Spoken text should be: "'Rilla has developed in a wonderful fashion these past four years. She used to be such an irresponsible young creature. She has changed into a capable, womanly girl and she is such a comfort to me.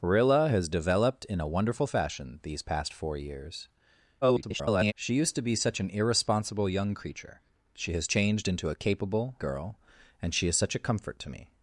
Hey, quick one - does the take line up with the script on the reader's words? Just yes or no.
no